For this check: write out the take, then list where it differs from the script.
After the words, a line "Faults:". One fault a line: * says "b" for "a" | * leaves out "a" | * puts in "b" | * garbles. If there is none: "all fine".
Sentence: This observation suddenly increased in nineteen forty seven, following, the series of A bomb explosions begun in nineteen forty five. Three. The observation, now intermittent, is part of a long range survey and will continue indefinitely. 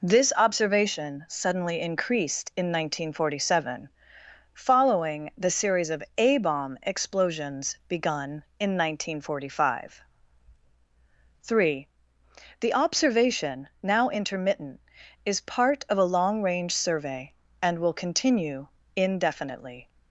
This observation suddenly increased in nineteen forty seven, following, the series of A bomb explosions begun in nineteen forty five. Three. The observation, now intermittent, is part of a long range survey and will continue indefinitely.
Faults:
all fine